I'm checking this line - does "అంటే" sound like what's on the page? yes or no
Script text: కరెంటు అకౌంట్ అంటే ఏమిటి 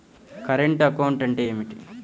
yes